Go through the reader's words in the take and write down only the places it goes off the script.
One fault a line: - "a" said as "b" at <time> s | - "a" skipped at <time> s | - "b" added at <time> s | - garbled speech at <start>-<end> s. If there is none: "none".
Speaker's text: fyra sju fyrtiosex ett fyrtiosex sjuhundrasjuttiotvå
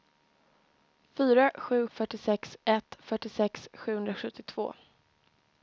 none